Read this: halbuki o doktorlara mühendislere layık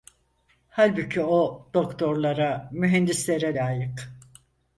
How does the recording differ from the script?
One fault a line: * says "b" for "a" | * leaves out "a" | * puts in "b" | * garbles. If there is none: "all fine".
all fine